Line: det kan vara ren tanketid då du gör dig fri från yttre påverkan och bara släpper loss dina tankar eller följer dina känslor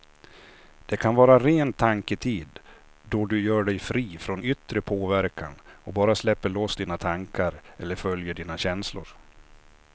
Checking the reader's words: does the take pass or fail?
pass